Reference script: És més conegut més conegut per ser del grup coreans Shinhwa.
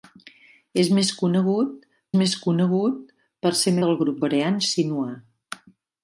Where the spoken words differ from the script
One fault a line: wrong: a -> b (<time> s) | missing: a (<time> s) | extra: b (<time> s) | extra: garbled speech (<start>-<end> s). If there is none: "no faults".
no faults